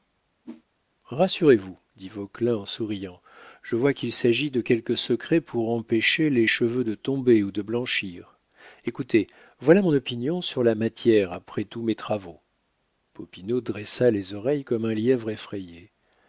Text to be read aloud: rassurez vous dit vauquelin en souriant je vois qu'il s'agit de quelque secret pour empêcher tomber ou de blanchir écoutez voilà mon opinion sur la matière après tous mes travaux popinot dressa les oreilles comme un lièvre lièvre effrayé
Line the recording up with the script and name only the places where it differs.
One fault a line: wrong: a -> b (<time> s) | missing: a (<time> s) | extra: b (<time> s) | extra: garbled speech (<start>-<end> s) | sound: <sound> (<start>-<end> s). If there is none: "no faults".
sound: whoosh (0.4-0.6 s)
extra: les cheveux de (6.3 s)
missing: lièvre (15.3 s)